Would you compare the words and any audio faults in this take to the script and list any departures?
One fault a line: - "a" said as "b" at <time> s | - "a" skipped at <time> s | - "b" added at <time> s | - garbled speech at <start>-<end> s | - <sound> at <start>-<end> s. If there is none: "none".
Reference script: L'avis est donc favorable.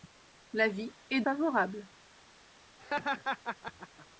- "donc" skipped at 1.2 s
- laugh at 2.8-4.1 s